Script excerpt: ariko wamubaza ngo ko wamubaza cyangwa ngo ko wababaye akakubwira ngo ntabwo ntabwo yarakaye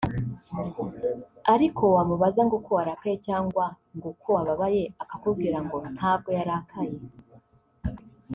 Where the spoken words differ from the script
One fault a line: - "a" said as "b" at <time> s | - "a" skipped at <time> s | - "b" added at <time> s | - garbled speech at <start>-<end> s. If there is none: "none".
- "wamubaza" said as "warakaye" at 2.8 s
- "ntabwo" skipped at 6.3 s